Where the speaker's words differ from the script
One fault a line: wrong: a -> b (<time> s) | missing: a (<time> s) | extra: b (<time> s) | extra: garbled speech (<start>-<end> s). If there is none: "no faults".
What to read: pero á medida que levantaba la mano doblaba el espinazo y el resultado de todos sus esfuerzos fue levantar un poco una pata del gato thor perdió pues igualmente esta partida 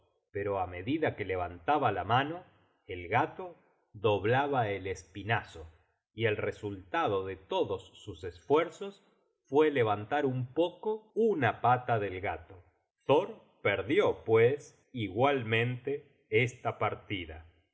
extra: el gato (2.9 s)